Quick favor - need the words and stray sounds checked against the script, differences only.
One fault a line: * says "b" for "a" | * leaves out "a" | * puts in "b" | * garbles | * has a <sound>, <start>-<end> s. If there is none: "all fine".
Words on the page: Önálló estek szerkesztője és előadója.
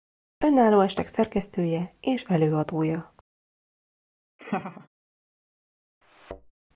* has a laugh, 4.4-4.9 s
* has a thud, 6.0-6.5 s